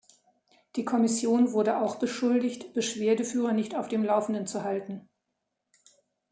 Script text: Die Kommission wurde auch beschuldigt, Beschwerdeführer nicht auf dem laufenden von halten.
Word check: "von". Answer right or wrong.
wrong